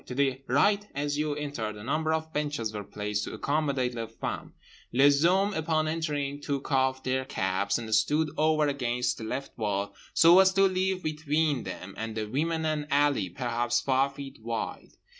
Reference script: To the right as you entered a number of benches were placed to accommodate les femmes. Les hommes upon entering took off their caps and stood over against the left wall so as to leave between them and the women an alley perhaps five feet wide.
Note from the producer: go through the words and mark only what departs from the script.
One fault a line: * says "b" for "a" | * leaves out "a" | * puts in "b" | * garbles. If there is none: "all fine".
all fine